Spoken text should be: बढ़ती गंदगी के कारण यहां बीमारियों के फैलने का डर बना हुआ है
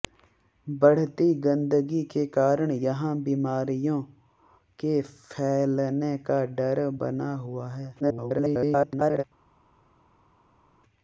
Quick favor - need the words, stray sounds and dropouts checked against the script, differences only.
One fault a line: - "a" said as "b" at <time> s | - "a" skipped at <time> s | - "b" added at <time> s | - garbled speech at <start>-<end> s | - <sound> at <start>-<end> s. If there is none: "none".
- garbled speech at 8.0-9.2 s